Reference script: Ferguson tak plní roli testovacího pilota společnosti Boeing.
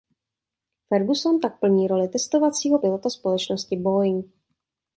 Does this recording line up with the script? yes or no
yes